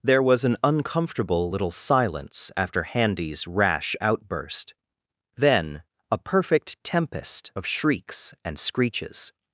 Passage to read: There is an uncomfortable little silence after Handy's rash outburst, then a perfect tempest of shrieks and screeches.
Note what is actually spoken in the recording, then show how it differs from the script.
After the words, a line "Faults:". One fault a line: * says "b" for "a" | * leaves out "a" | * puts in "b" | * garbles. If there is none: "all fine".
There was an uncomfortable little silence after Handy's rash outburst, then a perfect tempest of shrieks and screeches.
Faults:
* says "was" for "is"